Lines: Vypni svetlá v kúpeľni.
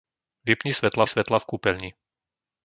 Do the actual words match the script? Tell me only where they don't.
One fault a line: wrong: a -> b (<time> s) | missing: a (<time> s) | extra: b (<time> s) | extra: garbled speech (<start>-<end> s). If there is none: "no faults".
extra: svetlá (1.1 s)